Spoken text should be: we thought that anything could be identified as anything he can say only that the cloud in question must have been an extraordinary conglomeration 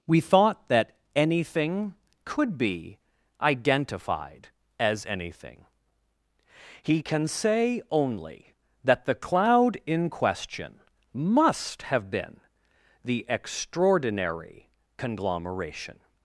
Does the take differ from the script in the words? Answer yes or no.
yes